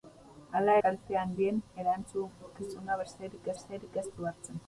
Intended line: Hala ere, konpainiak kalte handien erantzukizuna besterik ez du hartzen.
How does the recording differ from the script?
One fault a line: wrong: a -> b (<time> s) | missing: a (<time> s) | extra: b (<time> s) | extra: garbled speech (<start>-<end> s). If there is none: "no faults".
missing: ere konpainiak (0.8 s)
extra: besterik (3.6 s)